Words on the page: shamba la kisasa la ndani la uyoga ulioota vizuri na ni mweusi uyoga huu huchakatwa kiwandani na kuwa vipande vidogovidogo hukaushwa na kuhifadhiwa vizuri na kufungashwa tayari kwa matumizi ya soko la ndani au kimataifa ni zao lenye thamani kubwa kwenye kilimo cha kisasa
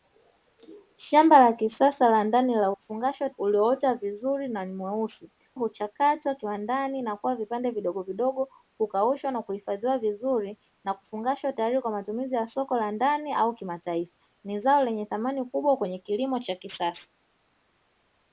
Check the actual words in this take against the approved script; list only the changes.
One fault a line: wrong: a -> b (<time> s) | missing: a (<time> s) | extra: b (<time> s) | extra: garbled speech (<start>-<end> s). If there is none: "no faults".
wrong: uyoga -> kufungashwa (2.7 s)
missing: uyoga huu (5.3 s)